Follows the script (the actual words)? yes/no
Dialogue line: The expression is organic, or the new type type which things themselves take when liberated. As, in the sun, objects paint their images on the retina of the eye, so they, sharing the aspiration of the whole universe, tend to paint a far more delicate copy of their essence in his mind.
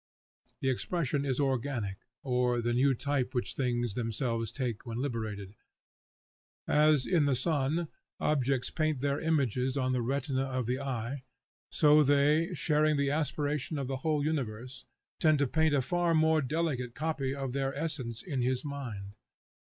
no